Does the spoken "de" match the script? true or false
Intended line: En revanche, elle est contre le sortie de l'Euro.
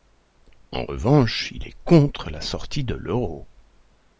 true